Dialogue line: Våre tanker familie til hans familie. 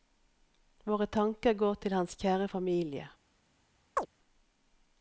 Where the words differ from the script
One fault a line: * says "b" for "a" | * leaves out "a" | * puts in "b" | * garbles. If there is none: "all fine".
* says "går" for "familie"
* puts in "kjære"